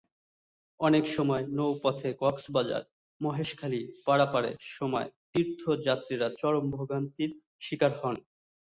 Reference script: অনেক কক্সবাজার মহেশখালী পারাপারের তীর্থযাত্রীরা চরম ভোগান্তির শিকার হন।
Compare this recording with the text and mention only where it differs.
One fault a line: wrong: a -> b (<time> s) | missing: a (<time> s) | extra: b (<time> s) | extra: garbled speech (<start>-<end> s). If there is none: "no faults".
extra: সময় নৌপথে (1.1 s)
extra: সময় (4.8 s)